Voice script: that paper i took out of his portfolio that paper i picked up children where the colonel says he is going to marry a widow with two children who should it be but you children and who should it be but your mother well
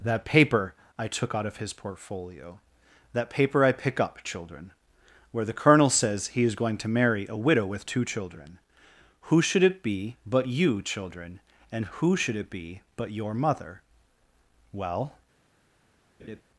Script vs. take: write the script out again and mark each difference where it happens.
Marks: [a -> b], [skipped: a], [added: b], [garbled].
that paper i took out of his portfolio that paper i [picked -> pick] up children where the colonel says he is going to marry a widow with two children who should it be but you children and who should it be but your mother well